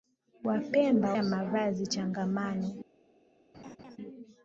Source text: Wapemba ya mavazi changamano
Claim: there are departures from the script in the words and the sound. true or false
true